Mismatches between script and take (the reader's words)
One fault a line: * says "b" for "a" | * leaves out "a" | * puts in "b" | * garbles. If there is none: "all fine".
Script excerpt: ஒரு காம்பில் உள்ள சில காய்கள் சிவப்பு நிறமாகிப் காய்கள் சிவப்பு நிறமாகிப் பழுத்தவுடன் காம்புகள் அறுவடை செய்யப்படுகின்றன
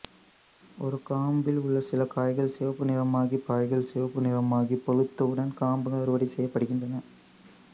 all fine